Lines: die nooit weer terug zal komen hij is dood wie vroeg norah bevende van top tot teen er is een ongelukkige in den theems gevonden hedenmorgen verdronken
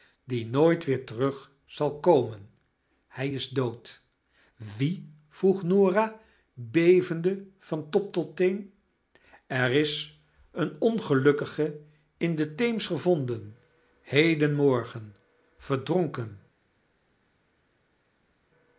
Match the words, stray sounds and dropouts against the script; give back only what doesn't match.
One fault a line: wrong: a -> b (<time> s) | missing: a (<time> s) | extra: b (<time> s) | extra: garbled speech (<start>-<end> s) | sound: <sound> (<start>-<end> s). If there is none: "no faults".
no faults